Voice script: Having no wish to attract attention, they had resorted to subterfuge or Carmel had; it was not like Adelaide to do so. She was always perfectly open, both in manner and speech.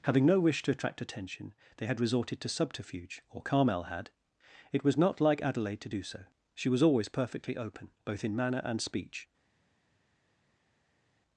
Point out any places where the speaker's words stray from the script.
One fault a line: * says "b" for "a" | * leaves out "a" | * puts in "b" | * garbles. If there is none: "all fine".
all fine